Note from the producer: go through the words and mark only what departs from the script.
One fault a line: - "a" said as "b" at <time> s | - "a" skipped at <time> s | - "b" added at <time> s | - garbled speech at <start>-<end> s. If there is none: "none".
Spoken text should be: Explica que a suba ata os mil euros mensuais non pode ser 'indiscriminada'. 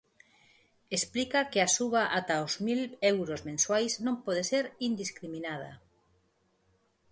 none